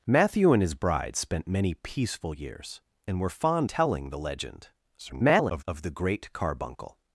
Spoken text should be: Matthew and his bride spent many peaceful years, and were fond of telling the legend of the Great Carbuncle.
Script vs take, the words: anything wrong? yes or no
yes